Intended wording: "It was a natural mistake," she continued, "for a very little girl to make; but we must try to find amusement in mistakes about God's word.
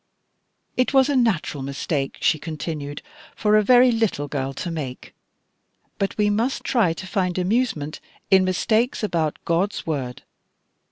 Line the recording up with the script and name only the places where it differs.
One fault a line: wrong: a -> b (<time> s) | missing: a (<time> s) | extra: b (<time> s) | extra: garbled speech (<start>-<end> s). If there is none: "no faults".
no faults